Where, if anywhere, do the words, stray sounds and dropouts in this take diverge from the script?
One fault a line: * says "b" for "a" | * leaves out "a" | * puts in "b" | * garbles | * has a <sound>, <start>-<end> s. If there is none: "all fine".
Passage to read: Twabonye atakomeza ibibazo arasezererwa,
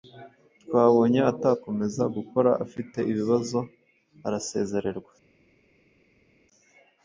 * puts in "gukora afite"